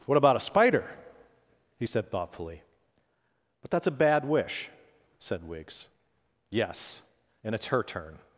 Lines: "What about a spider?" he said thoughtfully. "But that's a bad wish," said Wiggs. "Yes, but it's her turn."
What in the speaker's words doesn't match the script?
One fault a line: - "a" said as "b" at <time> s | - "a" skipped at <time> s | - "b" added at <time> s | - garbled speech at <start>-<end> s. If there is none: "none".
- "but" said as "and" at 7.4 s